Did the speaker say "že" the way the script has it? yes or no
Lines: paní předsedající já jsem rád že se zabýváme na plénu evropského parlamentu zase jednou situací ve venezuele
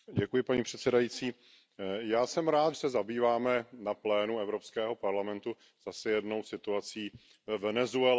no